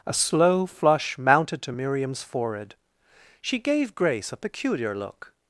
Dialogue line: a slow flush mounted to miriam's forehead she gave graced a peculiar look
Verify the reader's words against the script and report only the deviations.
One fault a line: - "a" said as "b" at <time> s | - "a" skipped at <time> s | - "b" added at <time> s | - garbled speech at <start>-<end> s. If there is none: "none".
- "graced" said as "grace" at 4.0 s